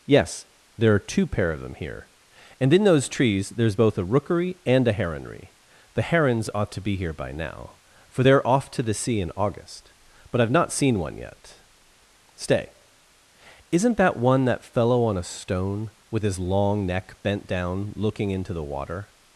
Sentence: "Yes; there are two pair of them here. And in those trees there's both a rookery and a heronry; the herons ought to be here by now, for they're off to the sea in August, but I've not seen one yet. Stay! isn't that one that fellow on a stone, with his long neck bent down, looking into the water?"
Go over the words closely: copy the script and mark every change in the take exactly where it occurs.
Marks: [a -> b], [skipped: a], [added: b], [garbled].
"Yes; there are two pair of them here. And in those trees there's both a rookery and a heronry; the herons ought to be here by now, for they're off to the sea in August, but I've not seen one yet. Stay! isn't that one that fellow on a stone, with his long neck bent down, looking into the water?"